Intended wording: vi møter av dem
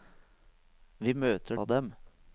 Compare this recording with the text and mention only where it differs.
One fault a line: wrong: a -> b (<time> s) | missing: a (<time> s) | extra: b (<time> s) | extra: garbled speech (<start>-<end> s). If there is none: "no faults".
no faults